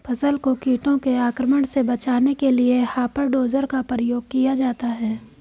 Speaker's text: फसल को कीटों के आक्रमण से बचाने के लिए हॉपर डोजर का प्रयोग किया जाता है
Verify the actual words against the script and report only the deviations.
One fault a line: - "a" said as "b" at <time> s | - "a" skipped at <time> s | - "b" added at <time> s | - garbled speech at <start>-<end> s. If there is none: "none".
none